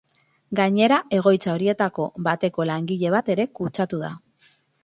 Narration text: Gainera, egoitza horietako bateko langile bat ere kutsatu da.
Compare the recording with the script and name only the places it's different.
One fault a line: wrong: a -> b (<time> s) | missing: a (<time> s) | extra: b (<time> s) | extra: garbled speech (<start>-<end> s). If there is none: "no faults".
no faults